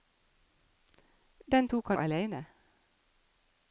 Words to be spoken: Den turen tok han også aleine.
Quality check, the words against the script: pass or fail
fail